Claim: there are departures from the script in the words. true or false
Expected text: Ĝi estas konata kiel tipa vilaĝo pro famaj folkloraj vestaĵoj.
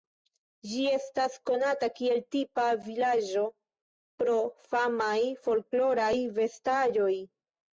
false